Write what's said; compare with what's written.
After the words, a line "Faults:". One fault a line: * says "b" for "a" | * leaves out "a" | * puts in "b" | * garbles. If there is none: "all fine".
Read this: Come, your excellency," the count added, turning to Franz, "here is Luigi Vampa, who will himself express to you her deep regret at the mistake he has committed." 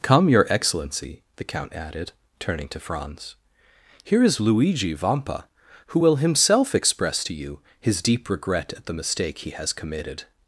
Come, your excellency," the count added, turning to Franz, "here is Luigi Vampa, who will himself express to you his deep regret at the mistake he has committed."
Faults:
* says "his" for "her"